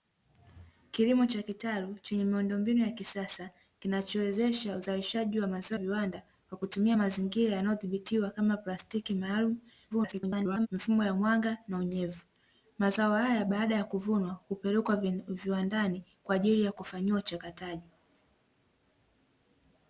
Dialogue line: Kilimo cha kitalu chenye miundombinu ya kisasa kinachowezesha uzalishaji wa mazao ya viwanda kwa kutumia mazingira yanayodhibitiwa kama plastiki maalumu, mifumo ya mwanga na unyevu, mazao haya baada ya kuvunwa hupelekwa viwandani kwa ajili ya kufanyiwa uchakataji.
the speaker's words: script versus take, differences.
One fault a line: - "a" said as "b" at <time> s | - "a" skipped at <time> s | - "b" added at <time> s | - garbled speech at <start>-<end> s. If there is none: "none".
- "ya" skipped at 5.8 s
- garbled speech at 9.9-10.7 s